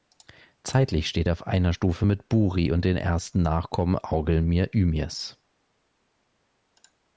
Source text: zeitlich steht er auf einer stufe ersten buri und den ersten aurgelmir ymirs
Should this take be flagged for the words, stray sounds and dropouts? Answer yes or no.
yes